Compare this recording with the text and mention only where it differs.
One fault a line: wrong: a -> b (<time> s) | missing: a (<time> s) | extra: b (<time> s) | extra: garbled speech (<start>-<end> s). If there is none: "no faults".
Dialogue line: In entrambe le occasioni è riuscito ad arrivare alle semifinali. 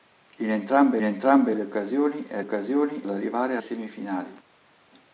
extra: entrambe (1.0 s)
wrong: riuscito -> occasioni (2.4 s)
missing: alle (3.6 s)